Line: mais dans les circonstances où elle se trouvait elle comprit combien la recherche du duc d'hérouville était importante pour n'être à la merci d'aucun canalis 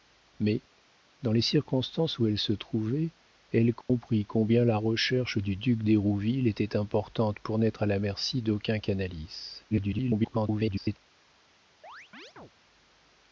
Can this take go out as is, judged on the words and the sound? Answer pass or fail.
fail